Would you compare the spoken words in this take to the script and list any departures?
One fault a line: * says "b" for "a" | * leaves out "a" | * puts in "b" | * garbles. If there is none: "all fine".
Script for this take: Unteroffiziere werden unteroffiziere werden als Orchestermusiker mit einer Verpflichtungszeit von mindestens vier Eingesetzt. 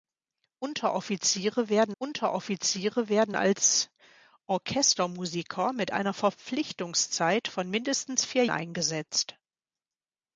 all fine